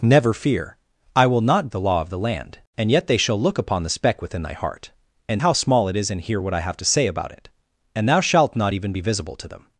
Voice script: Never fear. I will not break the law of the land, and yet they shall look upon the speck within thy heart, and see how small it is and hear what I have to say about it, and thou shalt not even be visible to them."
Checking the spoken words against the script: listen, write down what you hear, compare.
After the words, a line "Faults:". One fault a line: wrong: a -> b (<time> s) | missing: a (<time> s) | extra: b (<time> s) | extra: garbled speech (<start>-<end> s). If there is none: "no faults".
Never fear. I will not the law of the land, and yet they shall look upon the speck within thy heart, and how small it is and hear what I have to say about it, and thou shalt not even be visible to them."
Faults:
missing: break (1.7 s)
missing: see (5.4 s)